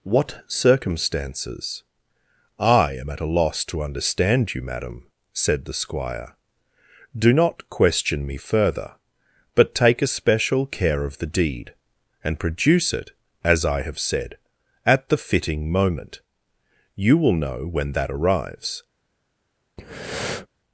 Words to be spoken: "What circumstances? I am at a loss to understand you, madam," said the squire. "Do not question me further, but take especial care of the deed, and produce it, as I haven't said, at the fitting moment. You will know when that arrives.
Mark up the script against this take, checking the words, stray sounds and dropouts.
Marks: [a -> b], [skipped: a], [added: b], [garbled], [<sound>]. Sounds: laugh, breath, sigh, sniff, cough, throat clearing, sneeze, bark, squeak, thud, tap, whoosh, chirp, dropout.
"What circumstances? I am at a loss to understand you, madam," said the squire. "Do not question me further, but take especial care of the deed, and produce it, as I [haven't -> have] said, at the fitting moment. You will know when that arrives. [breath]